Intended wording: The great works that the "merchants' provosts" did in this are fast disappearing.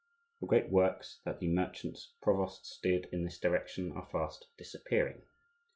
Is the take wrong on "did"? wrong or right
right